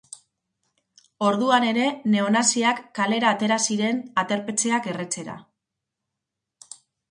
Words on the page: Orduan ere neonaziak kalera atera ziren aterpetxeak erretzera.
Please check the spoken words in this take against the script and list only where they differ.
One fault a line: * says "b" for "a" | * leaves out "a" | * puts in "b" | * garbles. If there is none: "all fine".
all fine